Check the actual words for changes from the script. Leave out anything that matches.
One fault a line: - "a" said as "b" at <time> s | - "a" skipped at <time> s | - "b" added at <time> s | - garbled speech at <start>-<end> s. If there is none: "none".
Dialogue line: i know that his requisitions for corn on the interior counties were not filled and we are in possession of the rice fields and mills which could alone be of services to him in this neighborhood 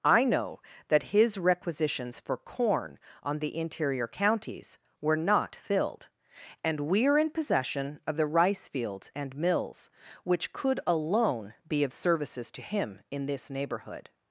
none